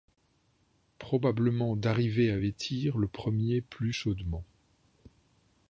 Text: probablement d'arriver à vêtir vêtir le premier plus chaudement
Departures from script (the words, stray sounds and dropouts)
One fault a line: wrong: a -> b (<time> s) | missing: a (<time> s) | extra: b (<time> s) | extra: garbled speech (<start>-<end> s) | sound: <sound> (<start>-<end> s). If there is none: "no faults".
missing: vêtir (3.0 s)